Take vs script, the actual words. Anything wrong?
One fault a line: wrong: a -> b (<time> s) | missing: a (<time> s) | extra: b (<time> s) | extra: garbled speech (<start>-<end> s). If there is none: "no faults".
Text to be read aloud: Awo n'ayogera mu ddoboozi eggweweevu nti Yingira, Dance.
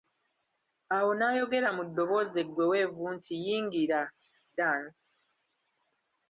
no faults